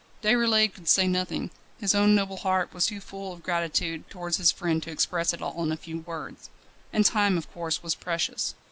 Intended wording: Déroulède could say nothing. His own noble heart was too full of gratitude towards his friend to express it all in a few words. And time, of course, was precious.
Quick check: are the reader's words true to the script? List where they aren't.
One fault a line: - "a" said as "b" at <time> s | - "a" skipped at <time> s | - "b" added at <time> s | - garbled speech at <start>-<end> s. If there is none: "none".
none